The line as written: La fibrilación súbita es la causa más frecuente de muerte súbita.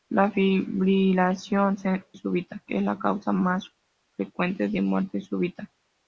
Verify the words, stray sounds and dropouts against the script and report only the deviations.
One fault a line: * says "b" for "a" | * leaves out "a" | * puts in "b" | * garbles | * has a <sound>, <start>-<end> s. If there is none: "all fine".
all fine